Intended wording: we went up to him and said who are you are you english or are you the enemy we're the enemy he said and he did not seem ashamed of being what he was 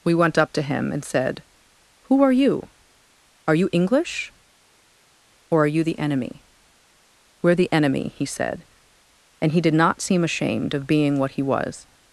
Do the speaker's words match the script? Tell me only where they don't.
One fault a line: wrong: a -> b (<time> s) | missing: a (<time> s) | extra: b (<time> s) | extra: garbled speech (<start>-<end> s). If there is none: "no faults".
no faults